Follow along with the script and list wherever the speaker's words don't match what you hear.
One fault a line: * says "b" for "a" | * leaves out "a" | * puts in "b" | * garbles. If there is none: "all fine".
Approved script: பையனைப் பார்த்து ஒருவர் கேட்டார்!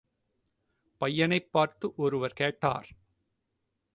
all fine